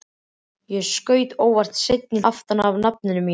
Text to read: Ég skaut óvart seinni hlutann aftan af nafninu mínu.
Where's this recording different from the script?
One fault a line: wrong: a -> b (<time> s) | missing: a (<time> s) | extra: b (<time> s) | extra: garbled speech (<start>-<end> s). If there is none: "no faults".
missing: hlutann (2.2 s)